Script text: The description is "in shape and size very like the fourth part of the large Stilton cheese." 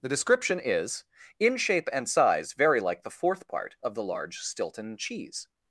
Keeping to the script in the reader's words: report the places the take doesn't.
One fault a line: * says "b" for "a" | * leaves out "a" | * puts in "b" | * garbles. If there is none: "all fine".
all fine